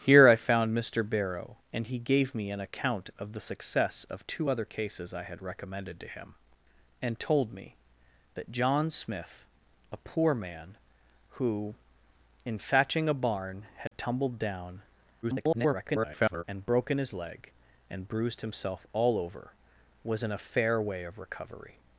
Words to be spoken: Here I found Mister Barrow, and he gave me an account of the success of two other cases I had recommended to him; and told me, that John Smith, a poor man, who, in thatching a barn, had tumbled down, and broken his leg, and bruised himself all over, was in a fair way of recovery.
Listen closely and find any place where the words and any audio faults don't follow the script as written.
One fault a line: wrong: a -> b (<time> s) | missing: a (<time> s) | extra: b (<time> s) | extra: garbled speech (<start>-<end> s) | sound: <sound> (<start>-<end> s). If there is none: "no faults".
sound: dropout (13.9-13.9 s)
extra: garbled speech (15.2-16.4 s)